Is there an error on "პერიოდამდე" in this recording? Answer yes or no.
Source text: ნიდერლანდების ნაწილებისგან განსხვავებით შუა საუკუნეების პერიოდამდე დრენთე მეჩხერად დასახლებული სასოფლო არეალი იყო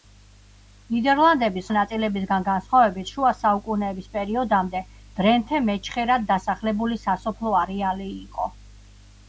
no